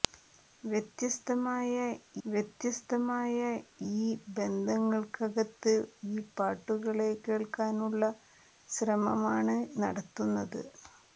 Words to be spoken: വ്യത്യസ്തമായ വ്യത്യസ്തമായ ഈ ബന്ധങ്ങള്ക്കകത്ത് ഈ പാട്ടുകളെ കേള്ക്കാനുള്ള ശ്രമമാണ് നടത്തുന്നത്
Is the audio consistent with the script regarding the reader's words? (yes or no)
yes